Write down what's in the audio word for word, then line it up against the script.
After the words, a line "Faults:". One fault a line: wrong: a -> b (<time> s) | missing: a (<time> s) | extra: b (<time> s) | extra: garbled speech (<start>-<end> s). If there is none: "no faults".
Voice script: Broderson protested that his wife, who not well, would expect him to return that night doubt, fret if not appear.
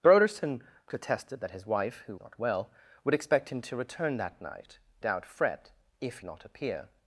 Broderson protested that his wife, who not well, would expect him to return that night doubt, fret if not appear.
Faults:
no faults